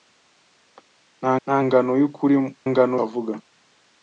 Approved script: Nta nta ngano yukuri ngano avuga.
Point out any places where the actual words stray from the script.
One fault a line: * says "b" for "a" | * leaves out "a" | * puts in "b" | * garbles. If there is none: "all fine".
all fine